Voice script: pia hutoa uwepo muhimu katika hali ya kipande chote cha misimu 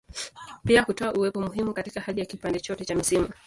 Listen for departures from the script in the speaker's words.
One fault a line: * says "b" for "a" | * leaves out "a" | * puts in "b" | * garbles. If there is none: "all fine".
all fine